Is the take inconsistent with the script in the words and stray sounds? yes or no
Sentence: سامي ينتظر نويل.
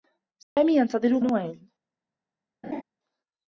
yes